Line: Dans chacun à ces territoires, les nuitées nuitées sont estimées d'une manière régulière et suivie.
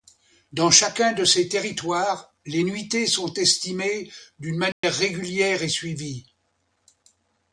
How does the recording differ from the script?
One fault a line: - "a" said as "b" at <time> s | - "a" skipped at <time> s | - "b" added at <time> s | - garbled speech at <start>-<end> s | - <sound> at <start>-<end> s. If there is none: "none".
- "à" said as "de" at 1.1 s
- "nuitées" skipped at 3.1 s
- dropout at 4.7-4.8 s